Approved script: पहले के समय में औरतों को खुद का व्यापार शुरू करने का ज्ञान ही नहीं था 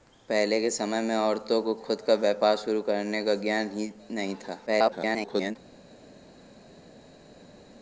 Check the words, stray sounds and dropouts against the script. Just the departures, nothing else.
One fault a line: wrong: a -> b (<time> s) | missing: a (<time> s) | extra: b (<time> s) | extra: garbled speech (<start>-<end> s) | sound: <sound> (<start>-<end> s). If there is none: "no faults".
extra: garbled speech (4.7-5.6 s)